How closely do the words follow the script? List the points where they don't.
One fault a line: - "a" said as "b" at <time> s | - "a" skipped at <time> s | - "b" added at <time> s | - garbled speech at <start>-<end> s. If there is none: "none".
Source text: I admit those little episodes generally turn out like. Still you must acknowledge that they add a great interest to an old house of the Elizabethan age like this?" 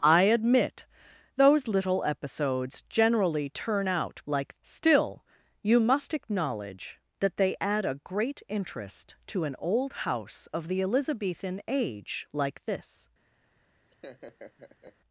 none